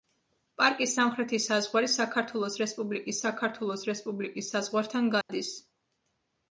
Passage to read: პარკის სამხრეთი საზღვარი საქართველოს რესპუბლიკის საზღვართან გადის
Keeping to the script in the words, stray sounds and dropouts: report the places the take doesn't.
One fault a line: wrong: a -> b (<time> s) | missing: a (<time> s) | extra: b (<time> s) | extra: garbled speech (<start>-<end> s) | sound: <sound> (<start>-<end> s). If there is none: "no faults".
extra: საქართველოს რესპუბლიკის (3.2 s)
sound: dropout (5.2-5.3 s)